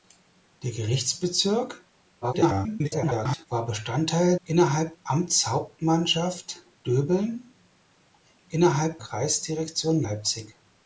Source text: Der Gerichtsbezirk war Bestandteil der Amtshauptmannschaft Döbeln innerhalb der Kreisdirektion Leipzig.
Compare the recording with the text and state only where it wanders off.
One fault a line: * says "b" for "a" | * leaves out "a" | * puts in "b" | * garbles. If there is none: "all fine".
* garbles
* says "innerhalb" for "der"
* leaves out "der"